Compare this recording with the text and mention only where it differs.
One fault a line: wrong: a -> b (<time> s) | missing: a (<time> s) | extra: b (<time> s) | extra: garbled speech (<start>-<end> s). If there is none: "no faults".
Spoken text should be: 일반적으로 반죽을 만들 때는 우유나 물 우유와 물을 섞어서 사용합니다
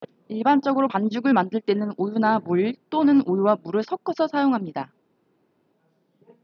extra: 또는 (2.9 s)